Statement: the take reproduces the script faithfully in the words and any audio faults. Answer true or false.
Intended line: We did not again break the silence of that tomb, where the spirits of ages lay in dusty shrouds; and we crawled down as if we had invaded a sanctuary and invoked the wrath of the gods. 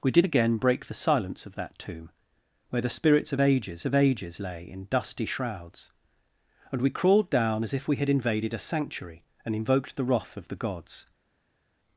false